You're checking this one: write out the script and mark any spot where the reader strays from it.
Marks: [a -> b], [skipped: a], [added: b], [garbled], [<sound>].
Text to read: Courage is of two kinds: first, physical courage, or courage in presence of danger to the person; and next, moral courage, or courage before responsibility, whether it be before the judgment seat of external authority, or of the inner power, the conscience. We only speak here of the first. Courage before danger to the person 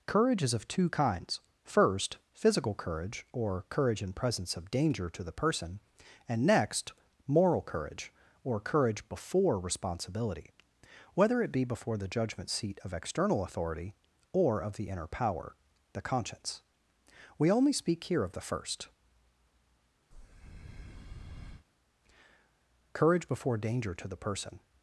Courage is of two kinds: first, physical courage, or courage in presence of danger to the person; and next, moral courage, or courage before responsibility, whether it be before the judgment seat of external authority, or of the inner power, the conscience. We only speak here of the first. [breath] Courage before danger to the person